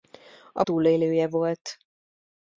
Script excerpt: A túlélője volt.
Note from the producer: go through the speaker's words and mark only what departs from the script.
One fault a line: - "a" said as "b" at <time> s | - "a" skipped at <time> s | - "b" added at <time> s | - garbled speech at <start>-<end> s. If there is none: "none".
none